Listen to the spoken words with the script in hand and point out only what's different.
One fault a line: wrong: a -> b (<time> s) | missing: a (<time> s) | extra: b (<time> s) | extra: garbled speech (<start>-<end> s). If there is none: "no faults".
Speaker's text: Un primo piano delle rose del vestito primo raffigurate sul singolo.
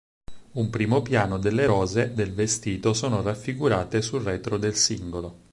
wrong: primo -> sono (2.9 s)
extra: retro del (4.2 s)